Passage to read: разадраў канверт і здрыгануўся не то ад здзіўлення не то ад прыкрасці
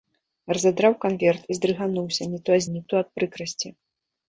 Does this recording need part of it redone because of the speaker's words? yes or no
yes